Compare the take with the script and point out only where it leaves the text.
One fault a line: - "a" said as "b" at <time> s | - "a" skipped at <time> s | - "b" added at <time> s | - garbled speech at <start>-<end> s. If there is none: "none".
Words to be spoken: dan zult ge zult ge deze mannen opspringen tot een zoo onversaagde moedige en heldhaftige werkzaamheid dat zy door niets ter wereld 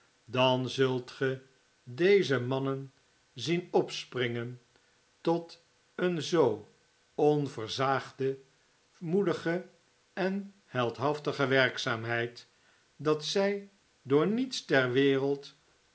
- "zult ge" skipped at 1.4 s
- "zien" added at 3.3 s